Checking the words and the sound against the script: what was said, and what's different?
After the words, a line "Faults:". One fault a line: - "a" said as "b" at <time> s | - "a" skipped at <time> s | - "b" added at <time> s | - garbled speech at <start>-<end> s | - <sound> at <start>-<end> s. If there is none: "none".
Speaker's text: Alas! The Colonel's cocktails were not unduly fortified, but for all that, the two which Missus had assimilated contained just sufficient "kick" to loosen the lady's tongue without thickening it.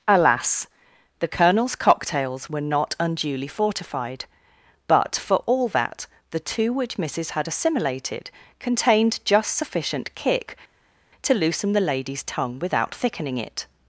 Alas! The Colonel's cocktails were not unduly fortified, but for all that, the two which Missus had assimilated contained just sufficient "kick" to loosen the lady's tongue without thickening it.
Faults:
none